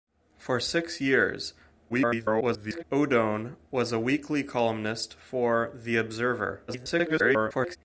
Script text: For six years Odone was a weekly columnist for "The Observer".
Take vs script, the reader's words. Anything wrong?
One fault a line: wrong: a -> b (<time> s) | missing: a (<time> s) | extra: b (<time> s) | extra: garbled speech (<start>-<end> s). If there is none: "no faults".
extra: garbled speech (1.9-2.8 s)
extra: garbled speech (6.7-7.8 s)